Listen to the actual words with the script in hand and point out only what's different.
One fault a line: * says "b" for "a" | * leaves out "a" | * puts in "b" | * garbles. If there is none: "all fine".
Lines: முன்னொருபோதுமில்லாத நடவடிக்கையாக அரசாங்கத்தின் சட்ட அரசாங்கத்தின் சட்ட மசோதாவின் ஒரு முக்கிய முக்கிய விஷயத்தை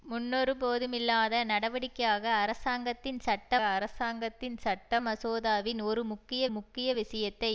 all fine